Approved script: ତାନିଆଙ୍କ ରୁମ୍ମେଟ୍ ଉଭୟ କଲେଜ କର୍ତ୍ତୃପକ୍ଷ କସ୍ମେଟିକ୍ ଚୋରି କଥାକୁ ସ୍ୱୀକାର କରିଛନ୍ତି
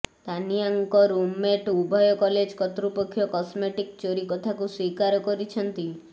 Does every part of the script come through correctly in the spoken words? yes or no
yes